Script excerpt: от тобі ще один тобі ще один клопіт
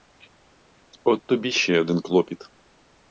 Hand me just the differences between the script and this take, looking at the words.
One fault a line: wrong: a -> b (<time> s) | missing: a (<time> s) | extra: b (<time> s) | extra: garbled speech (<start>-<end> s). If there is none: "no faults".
missing: тобі ще один (2.0 s)